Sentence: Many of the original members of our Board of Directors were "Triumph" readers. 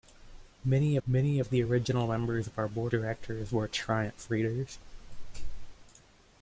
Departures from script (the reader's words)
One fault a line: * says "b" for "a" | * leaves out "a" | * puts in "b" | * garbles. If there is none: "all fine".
* puts in "many"
* leaves out "of"